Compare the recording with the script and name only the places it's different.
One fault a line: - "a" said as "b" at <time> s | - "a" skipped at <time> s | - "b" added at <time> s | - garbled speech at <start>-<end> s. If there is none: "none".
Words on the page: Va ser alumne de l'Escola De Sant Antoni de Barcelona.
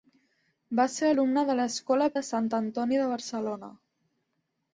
none